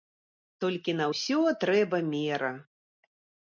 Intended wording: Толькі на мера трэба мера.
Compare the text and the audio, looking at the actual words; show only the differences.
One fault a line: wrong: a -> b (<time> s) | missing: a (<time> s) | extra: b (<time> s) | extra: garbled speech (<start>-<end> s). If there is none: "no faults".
wrong: мера -> ўсё (1.1 s)